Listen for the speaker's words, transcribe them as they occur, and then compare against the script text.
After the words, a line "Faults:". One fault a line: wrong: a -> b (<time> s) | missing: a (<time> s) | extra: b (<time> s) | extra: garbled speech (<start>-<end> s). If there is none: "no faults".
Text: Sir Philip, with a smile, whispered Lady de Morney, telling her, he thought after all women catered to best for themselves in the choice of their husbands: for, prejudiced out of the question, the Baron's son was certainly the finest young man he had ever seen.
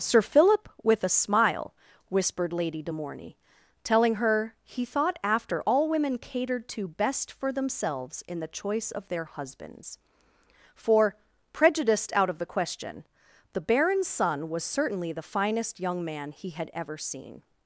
Sir Philip, with a smile, whispered Lady de Morney, telling her, he thought after all women catered to best for themselves in the choice of their husbands: for, prejudiced out of the question, the Baron's son was certainly the finest young man he had ever seen.
Faults:
no faults